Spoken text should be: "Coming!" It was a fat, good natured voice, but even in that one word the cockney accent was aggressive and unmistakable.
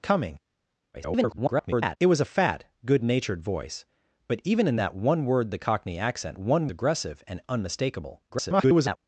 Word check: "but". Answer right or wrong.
right